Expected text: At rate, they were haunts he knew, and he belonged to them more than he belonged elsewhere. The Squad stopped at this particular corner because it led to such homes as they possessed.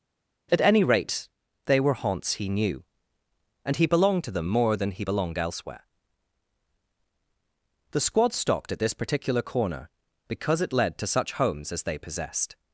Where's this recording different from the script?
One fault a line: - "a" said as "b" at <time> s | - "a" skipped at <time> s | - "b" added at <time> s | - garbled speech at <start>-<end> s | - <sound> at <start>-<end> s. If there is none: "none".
- "any" added at 0.6 s